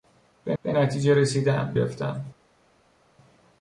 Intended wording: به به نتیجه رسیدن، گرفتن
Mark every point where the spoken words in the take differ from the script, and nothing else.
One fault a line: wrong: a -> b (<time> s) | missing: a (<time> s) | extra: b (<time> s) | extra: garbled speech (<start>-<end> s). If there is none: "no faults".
no faults